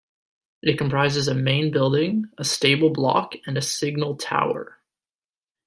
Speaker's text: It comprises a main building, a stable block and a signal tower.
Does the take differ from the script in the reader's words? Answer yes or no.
no